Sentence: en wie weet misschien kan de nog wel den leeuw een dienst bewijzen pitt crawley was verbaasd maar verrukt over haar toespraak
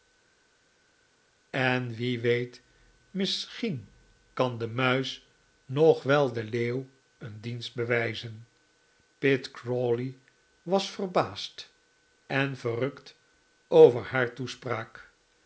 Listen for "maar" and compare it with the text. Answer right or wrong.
wrong